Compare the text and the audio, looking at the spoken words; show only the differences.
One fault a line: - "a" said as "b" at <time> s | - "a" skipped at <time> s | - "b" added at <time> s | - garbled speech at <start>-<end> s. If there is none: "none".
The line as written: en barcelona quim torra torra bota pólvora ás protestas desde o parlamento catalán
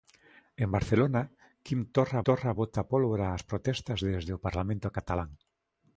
none